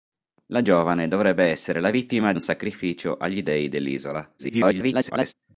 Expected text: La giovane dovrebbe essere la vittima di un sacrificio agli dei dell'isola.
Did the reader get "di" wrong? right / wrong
wrong